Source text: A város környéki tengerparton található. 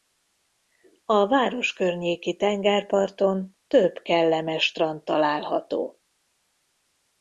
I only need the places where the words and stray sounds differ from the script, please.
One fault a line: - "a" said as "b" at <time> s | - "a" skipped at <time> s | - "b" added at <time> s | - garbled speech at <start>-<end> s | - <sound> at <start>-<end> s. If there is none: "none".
- "több kellemes strand" added at 3.7 s